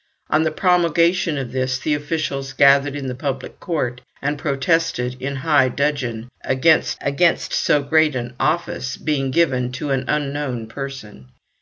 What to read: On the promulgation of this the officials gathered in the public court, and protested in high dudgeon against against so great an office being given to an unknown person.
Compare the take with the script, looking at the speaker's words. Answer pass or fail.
pass